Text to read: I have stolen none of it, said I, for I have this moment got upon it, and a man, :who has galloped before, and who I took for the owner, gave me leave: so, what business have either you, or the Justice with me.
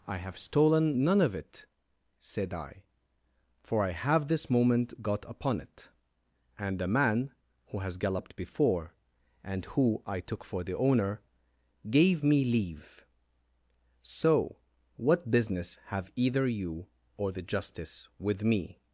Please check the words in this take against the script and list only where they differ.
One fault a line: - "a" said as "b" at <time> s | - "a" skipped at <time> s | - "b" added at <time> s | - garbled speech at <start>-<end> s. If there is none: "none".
- "a" said as "the" at 6.8 s